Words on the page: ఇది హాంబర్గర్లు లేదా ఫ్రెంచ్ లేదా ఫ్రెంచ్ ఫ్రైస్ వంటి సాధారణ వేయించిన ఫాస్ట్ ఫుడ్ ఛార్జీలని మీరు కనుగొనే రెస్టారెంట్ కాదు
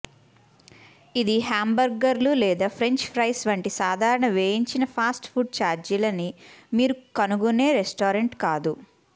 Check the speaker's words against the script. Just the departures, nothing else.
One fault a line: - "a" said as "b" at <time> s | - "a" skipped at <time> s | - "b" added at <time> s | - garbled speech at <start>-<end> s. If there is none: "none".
- "లేదా ఫ్రెంచ్" skipped at 3.0 s